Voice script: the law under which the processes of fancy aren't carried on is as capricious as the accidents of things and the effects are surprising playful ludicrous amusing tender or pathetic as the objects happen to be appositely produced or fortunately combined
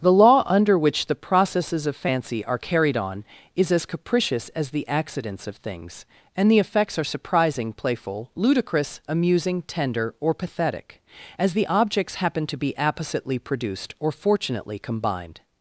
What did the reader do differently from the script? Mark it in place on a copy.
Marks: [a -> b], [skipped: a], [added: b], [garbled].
the law under which the processes of fancy [aren't -> are] carried on is as capricious as the accidents of things and the effects are surprising playful ludicrous amusing tender or pathetic as the objects happen to be appositely produced or fortunately combined